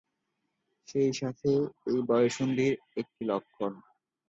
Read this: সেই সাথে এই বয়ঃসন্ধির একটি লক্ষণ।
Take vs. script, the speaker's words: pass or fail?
pass